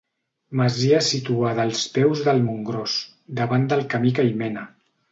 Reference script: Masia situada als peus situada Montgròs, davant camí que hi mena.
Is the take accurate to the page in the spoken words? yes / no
no